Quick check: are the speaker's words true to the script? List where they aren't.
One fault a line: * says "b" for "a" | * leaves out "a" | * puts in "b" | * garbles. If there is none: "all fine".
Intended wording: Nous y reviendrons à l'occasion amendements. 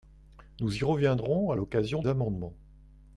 all fine